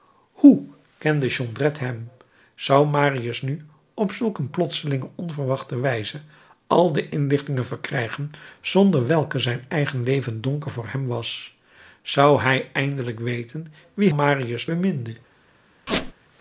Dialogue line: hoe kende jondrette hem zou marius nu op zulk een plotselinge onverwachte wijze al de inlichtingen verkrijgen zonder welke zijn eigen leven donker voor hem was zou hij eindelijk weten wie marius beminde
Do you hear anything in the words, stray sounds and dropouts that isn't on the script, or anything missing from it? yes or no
yes